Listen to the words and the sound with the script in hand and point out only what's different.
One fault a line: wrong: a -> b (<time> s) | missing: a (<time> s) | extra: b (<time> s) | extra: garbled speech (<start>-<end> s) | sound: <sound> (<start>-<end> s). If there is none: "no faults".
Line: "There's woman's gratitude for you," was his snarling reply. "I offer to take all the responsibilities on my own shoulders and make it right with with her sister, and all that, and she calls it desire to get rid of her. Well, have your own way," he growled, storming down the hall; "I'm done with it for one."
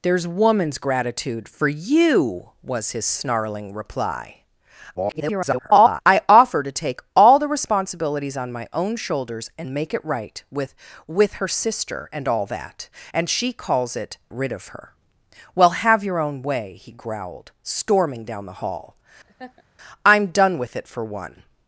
extra: garbled speech (4.9-6.0 s)
missing: desire to get (14.2 s)
sound: laugh (19.2-19.6 s)